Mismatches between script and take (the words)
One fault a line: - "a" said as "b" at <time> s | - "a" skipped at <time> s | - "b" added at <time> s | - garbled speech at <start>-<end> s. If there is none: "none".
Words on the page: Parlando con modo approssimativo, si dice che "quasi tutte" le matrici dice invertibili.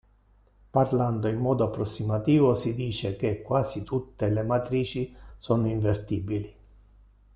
- "con" said as "in" at 1.3 s
- "dice" said as "sono" at 5.3 s